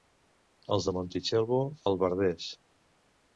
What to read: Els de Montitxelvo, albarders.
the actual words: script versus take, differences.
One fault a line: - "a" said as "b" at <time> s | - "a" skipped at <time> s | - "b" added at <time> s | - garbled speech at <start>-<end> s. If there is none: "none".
none